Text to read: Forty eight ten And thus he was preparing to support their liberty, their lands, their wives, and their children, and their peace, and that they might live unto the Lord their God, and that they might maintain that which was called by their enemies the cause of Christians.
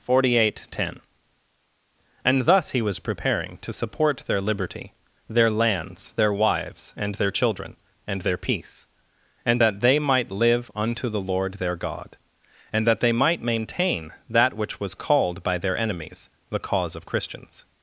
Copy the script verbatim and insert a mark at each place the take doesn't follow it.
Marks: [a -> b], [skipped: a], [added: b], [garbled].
Forty eight ten And thus he was preparing to support their liberty, their lands, their wives, and their children, and their peace, and that they might live unto the Lord their God, and that they might maintain that which was called by their enemies the cause of Christians.